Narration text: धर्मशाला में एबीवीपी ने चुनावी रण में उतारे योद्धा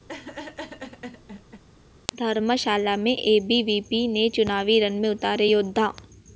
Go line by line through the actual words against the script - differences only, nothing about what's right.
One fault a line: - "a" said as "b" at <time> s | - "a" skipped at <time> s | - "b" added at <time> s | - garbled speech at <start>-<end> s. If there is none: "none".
none